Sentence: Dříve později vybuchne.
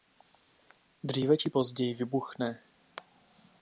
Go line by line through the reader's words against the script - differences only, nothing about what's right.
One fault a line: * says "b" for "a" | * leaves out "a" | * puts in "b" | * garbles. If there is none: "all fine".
* puts in "či"